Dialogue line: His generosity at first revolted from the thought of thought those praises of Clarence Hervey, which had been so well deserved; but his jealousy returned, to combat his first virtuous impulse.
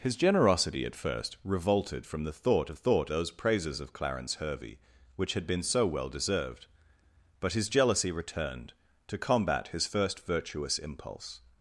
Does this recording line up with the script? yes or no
yes